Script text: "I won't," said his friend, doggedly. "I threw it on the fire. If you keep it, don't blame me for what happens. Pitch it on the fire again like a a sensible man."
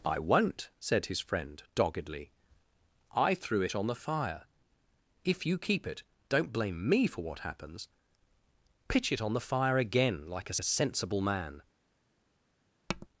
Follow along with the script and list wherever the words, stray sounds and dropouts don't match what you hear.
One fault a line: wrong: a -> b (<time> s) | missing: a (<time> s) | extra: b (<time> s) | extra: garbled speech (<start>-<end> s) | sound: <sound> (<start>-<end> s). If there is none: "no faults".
sound: tap (12.9-13.1 s)